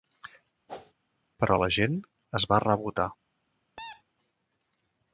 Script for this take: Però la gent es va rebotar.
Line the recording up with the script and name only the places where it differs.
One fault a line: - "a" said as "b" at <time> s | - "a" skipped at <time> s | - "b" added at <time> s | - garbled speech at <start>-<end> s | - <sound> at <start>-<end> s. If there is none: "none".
- whoosh at 0.7-0.9 s
- squeak at 3.8-4.0 s